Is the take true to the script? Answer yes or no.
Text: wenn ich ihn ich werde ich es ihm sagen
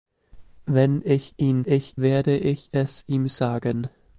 yes